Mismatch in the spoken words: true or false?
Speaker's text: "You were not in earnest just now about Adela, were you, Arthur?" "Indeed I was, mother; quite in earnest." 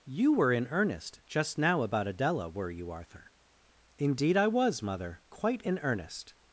true